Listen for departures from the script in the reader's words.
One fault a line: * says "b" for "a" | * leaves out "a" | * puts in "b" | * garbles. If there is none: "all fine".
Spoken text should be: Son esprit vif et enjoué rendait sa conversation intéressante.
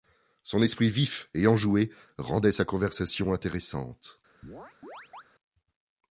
all fine